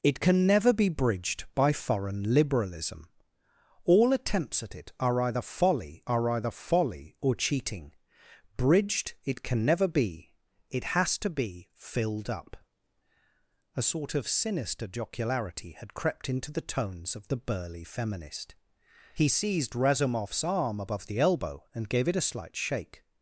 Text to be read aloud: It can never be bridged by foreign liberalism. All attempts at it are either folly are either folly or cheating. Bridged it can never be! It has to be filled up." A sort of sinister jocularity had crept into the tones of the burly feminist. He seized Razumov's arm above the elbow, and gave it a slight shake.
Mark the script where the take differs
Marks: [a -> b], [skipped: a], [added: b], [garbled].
It can never be bridged by foreign liberalism. All attempts at it are either folly are either folly or cheating. Bridged it can never be! It has to be filled up." A sort of sinister jocularity had crept into the tones of the burly feminist. He seized Razumov's arm above the elbow, and gave it a slight shake.